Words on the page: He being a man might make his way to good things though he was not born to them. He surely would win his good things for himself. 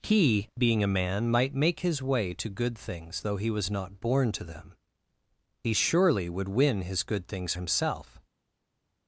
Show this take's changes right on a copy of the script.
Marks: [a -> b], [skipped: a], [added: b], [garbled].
He being a man might make his way to good things though he was not born to them. He surely would win his good things [skipped: for] himself.